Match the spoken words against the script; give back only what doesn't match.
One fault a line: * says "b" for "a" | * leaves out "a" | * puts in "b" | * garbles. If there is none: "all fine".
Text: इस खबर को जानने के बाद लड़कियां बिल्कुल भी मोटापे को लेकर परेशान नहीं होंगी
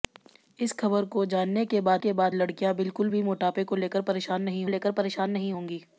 * puts in "के बाद"
* puts in "लेकर परेशान नहीं"